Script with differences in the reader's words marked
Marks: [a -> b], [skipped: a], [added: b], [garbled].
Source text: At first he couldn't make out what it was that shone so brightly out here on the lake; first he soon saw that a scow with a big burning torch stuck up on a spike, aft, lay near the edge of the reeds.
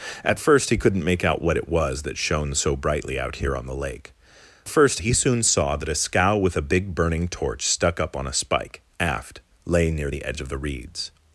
At first he couldn't make out what it was that shone so brightly out here on the lake; first he soon saw that a scow with a big burning torch stuck up on a spike, aft, lay near the edge of the reeds.